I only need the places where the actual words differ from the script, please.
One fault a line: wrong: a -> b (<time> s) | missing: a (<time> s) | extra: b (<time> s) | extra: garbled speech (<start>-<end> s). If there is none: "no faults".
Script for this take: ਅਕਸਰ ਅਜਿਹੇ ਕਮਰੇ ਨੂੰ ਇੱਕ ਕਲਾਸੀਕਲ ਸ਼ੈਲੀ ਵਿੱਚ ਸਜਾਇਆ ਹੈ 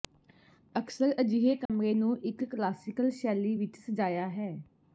no faults